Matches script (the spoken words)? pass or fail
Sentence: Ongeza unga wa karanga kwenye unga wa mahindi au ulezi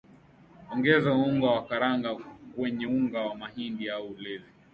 pass